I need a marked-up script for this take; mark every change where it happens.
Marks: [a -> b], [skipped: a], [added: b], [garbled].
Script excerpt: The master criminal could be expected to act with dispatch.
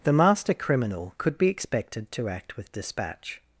The master criminal could be expected to act with dispatch.